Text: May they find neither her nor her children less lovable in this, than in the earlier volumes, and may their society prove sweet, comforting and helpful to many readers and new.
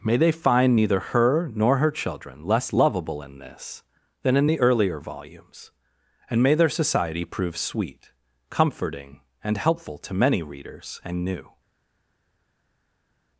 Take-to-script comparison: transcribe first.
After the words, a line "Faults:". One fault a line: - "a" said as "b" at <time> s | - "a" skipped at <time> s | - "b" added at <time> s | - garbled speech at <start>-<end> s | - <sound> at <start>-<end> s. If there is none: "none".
May they find neither her nor her children less lovable in this, than in the earlier volumes, and may their society prove sweet, comforting and helpful to many readers and new.
Faults:
none